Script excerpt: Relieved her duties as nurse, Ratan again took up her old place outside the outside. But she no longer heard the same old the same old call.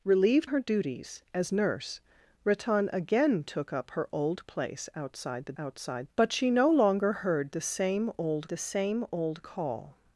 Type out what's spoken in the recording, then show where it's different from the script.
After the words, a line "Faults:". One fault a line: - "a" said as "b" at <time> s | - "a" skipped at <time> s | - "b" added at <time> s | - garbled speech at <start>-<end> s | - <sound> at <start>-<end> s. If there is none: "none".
Relieved her duties as nurse, Ratan again took up her old place outside the outside. But she no longer heard the same old the same old call.
Faults:
none